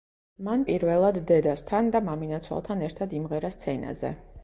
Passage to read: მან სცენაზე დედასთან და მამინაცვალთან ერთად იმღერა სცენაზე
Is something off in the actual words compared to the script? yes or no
yes